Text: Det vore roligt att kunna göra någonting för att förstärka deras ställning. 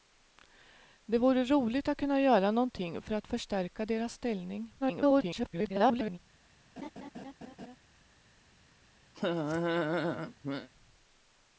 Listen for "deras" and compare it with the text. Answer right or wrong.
right